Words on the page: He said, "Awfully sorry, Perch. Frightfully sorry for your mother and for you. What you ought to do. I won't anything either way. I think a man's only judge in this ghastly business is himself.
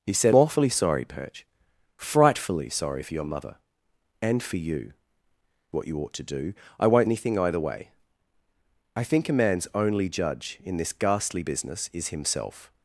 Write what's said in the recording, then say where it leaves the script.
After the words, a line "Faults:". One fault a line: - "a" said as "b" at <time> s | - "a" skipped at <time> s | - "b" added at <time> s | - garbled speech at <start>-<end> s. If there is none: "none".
He said, "Awfully sorry, Perch. Frightfully sorry for your mother and for you. What you ought to do. I won't anything either way. I think a man's only judge in this ghastly business is himself.
Faults:
none